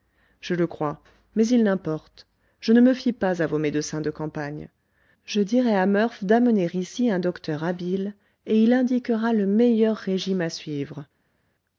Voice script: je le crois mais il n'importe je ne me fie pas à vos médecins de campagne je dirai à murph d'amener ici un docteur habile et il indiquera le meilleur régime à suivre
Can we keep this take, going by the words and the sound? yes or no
yes